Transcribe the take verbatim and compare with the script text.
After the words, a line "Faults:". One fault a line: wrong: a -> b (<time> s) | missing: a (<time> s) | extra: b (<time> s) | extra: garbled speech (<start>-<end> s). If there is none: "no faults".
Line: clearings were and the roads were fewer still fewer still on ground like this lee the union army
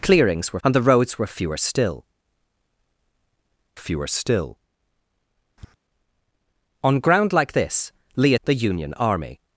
clearings were and the roads were fewer still fewer still on ground like this lee the union army
Faults:
no faults